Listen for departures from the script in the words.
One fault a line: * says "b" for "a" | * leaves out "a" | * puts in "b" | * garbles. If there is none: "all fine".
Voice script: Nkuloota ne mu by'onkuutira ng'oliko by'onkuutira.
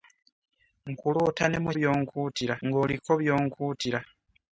all fine